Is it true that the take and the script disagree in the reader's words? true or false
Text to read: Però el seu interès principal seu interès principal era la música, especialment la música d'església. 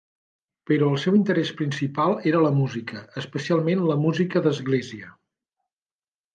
true